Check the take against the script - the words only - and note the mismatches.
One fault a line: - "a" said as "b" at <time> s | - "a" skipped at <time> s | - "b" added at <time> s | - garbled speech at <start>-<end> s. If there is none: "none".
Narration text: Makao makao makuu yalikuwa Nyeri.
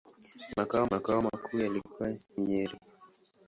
none